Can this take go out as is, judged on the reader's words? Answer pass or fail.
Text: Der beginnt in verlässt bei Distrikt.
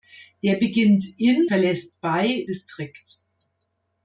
pass